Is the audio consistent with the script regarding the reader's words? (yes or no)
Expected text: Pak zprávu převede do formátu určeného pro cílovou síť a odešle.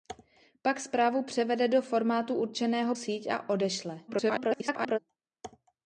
no